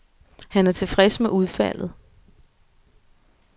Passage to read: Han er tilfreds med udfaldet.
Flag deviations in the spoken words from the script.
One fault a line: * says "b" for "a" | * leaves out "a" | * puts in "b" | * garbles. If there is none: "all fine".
all fine